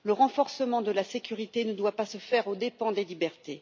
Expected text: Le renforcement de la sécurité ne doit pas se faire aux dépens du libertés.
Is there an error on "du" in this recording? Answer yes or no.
yes